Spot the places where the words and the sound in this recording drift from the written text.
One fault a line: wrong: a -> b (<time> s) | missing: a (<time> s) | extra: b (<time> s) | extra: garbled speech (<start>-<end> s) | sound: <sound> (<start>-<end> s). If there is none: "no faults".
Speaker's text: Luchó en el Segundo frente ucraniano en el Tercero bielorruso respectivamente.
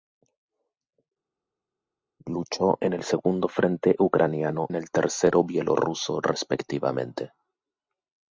no faults